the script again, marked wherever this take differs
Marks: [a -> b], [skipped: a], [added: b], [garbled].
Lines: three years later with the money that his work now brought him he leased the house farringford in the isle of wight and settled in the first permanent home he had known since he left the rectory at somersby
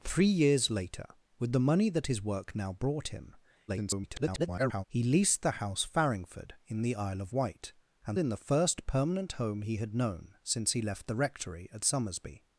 three years later with the money that his work now brought him [garbled] he leased the house farringford in the isle of wight and [skipped: settled] in the first permanent home he had known since he left the rectory at somersby